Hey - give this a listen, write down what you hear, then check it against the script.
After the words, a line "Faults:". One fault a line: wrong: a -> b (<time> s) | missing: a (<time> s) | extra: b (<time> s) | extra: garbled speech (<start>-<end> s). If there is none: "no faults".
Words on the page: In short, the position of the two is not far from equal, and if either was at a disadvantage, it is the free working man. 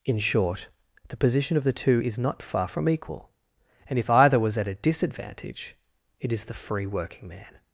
In short, the position of the two is not far from equal, and if either was at a disadvantage, it is the free working man.
Faults:
no faults